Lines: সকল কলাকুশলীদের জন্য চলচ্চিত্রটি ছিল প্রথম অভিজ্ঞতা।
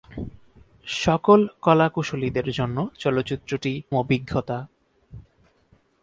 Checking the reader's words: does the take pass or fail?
fail